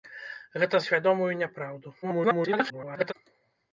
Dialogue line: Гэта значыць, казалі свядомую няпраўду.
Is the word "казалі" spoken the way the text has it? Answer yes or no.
no